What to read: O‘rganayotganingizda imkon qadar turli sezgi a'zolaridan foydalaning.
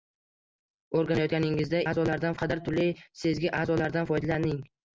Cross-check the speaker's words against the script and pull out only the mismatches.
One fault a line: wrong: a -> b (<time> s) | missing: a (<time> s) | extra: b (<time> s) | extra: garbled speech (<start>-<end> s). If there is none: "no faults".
wrong: imkon -> a'zolaridan (1.9 s)